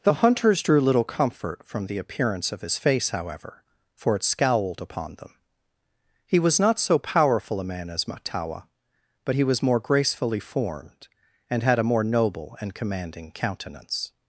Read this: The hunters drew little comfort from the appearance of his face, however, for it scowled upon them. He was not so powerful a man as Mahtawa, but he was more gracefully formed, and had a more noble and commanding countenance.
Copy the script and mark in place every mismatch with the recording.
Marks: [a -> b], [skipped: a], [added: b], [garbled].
The hunters drew little comfort from the appearance of his face, however, for it scowled upon them. He was not so powerful a man as Mahtawa, but he was more gracefully formed, and had a more noble and commanding countenance.